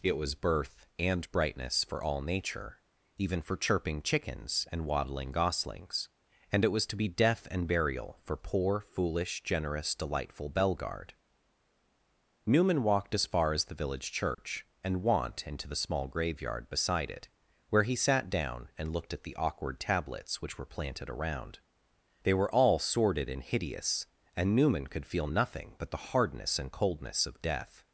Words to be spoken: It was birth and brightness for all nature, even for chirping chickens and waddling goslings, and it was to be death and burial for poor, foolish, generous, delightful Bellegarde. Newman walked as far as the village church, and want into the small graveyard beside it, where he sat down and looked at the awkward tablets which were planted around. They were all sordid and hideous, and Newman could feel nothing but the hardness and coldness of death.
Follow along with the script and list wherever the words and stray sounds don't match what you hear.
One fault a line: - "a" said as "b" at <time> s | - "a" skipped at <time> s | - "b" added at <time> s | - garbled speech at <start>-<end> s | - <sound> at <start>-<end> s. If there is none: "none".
- dropout at 14.3-14.4 s